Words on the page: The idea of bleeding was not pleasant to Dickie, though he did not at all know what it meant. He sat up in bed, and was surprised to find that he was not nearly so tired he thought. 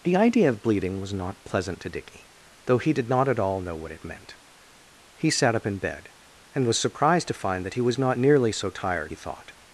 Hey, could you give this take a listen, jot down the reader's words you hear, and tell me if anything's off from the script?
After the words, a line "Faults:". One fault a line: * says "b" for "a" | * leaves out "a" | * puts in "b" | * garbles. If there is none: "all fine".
The idea of bleeding was not pleasant to Dickie, though he did not at all know what it meant. He sat up in bed, and was surprised to find that he was not nearly so tired he thought.
Faults:
all fine